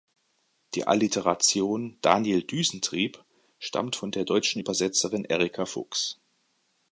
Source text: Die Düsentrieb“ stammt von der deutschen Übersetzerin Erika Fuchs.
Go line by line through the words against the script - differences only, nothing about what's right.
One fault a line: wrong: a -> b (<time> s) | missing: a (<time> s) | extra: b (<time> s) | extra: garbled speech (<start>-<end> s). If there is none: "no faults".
extra: Alliteration Daniel (0.9 s)